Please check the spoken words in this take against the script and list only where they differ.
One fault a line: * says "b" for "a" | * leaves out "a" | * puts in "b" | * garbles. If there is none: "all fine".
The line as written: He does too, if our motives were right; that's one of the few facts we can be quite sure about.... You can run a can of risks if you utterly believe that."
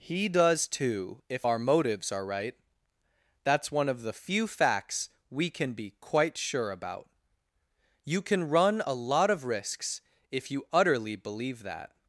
* says "are" for "were"
* says "lot" for "can"